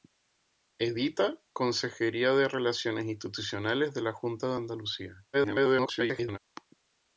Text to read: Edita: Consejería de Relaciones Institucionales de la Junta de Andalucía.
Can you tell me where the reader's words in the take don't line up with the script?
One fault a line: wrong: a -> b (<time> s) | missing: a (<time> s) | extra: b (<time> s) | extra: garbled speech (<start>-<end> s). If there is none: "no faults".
extra: garbled speech (5.3-6.4 s)